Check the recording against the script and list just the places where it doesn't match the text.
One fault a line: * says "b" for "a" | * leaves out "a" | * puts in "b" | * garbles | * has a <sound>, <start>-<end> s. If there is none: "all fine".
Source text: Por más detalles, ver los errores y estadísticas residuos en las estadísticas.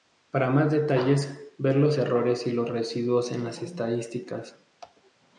* says "Para" for "Por"
* says "los" for "estadísticas"